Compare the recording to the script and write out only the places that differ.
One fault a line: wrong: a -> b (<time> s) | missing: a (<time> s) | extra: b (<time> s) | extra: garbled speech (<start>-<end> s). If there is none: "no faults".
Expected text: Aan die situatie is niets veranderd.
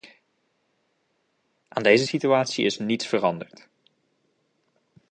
wrong: die -> deze (1.8 s)